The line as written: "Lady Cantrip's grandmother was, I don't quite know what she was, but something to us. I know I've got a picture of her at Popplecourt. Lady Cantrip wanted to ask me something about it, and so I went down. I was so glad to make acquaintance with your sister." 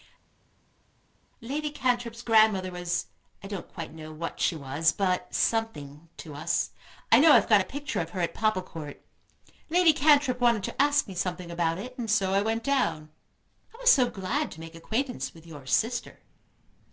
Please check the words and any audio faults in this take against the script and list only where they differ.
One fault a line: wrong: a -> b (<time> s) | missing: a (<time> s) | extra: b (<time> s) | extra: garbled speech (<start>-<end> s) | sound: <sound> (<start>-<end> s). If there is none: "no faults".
no faults